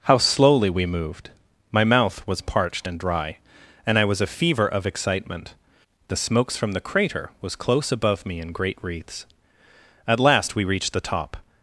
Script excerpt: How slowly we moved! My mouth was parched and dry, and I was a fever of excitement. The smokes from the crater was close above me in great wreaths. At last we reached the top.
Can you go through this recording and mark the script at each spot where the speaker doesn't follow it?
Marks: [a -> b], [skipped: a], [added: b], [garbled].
How slowly we moved! My mouth was parched and dry, and I was a fever of excitement. The smokes from the crater was close above me in great wreaths. At last we reached the top.